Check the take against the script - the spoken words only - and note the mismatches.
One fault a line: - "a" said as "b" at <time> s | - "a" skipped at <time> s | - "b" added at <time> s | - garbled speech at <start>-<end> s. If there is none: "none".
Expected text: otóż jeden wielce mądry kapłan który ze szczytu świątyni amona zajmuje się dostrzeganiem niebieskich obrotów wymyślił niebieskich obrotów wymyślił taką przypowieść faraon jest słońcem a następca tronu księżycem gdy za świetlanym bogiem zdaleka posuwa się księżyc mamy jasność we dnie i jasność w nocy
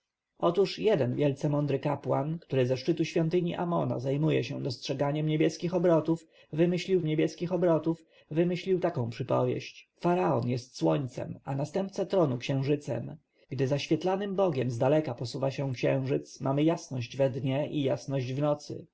none